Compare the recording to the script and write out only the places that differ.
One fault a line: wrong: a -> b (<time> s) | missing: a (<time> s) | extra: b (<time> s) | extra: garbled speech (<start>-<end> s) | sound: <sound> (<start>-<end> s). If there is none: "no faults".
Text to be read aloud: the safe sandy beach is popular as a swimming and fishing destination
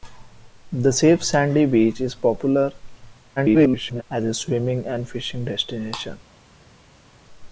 extra: garbled speech (3.4-4.0 s)